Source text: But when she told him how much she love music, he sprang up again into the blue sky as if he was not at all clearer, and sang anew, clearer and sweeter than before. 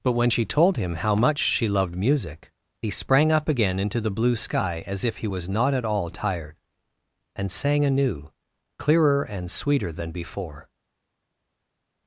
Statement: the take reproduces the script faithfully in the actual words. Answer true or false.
false